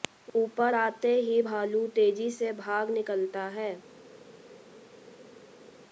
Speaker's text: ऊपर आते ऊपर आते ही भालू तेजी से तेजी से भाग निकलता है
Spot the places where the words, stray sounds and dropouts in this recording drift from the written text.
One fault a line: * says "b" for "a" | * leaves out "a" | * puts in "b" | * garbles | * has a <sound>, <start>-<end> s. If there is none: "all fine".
* leaves out "ऊपर आते"
* leaves out "तेजी से"